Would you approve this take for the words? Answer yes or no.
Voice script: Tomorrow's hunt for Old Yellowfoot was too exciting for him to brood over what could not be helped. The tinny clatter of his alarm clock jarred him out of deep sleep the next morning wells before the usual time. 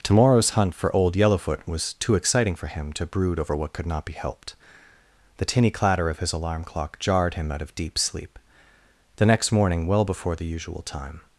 no